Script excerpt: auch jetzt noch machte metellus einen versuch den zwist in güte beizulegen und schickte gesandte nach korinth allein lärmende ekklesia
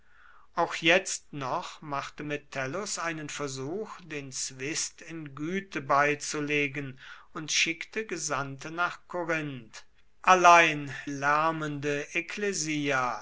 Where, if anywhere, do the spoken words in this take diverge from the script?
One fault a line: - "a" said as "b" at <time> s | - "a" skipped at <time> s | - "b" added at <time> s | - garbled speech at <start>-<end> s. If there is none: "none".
none